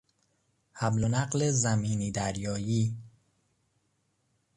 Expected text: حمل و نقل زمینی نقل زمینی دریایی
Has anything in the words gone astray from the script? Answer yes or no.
yes